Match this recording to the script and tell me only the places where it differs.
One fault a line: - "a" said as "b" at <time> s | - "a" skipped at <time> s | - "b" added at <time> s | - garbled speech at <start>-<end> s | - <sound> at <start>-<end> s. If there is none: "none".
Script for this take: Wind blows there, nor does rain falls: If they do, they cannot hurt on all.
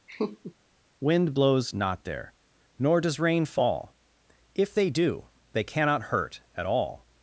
- laugh at 0.1-0.5 s
- "not" added at 1.7 s
- "falls" said as "fall" at 3.4 s
- "on" said as "at" at 6.6 s